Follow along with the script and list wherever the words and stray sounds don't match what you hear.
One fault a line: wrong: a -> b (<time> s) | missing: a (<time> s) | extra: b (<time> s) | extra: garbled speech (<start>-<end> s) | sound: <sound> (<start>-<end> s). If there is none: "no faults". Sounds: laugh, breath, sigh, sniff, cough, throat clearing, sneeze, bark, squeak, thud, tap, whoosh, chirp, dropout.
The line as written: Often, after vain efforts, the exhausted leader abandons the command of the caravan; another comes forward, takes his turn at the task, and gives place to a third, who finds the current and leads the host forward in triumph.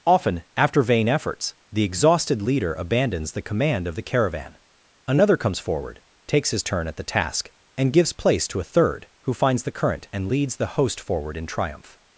no faults